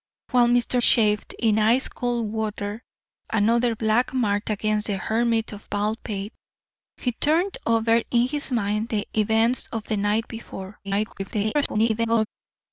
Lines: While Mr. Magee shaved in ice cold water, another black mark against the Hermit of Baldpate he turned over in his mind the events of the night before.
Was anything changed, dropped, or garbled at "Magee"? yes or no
yes